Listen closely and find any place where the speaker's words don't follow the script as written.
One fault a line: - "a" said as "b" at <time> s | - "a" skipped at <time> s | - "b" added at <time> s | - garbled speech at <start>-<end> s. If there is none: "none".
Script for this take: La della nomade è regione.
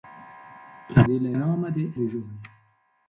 none